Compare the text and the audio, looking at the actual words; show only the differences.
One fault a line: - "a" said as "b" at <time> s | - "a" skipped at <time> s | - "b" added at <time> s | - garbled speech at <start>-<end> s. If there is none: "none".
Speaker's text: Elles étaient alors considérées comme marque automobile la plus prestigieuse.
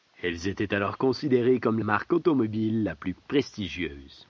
none